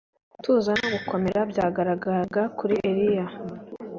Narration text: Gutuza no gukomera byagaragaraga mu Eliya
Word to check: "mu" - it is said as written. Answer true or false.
false